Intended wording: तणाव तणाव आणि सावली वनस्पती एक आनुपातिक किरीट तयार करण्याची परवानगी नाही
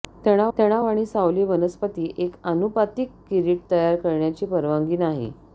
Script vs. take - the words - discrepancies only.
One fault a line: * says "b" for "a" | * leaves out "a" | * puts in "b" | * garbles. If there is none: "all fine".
all fine